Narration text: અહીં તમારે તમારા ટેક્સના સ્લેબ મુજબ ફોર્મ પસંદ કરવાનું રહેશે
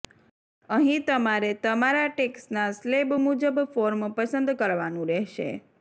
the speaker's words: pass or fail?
pass